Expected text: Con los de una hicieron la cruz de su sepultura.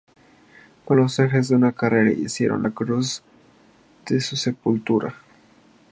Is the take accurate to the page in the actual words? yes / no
no